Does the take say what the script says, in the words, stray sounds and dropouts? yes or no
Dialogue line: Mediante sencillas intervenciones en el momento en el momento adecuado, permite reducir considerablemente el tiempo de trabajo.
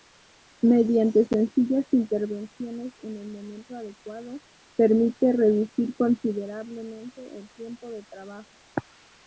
no